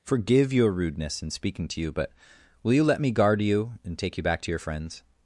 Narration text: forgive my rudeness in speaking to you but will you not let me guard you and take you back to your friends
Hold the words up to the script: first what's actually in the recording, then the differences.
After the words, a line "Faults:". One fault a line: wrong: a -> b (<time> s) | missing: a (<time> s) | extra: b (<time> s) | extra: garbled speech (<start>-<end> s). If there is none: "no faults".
forgive your rudeness in speaking to you but will you let me guard you and take you back to your friends
Faults:
wrong: my -> your (0.5 s)
missing: not (2.8 s)